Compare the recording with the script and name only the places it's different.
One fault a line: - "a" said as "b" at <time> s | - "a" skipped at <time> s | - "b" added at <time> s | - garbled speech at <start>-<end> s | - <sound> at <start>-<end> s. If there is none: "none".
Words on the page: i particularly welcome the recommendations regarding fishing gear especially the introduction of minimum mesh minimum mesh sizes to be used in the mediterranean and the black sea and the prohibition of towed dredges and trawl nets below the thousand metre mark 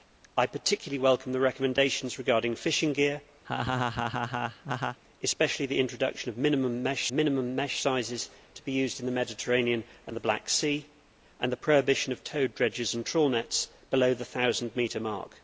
- laugh at 3.4-5.0 s